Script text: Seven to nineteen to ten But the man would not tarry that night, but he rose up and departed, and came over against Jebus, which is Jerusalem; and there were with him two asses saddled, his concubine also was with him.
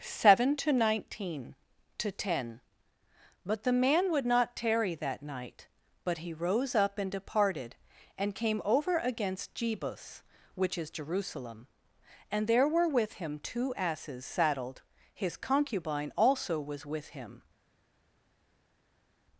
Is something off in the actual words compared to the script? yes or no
no